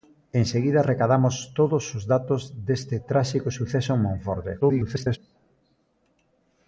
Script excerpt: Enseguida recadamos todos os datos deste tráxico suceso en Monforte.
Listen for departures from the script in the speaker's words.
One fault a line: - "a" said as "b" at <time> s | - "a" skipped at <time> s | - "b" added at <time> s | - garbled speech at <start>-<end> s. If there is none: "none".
- garbled speech at 4.6-5.2 s